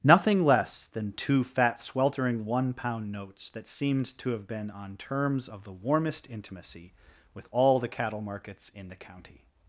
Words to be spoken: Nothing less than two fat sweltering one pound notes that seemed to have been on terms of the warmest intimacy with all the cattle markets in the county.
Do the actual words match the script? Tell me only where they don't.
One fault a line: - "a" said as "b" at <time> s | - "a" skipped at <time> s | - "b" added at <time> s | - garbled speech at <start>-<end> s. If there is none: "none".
none